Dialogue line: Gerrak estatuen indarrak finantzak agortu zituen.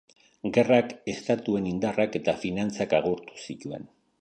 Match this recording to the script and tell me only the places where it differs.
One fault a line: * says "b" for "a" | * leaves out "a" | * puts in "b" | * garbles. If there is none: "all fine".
* puts in "eta"